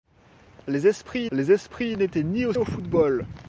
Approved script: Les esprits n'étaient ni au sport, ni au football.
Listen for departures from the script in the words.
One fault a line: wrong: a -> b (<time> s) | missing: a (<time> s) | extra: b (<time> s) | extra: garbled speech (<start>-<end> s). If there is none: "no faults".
extra: les esprits (1.3 s)
missing: sport ni (2.5 s)